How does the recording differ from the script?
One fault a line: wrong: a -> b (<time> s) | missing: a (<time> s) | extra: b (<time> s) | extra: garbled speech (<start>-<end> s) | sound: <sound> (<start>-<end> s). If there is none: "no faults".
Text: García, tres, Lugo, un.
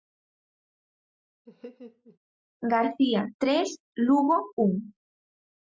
sound: laugh (1.5-2.2 s)